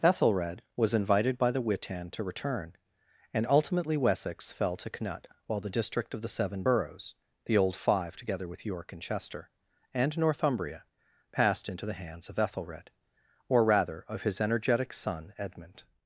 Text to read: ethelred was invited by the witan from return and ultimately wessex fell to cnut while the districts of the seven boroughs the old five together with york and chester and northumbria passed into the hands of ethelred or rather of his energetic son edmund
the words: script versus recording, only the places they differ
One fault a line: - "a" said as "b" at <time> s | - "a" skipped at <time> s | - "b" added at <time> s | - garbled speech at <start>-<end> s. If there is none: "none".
- "from" said as "to" at 2.1 s
- "districts" said as "district" at 5.7 s